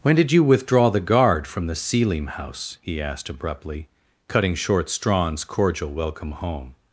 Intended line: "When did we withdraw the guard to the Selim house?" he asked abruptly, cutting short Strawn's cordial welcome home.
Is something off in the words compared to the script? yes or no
yes